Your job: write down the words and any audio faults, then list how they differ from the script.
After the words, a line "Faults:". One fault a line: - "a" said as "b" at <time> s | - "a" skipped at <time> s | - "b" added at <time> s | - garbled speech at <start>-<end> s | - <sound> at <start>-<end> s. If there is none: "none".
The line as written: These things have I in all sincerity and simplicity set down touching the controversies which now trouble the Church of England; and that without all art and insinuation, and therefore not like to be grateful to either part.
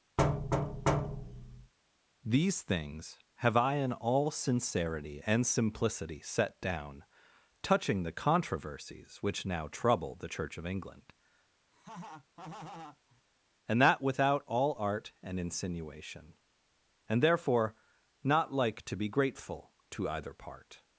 These things have I in all sincerity and simplicity set down touching the controversies which now trouble the Church of England; and that without all art and insinuation, and therefore not like to be grateful to either part.
Faults:
- thud at 0.2-1.7 s
- laugh at 11.7-13.2 s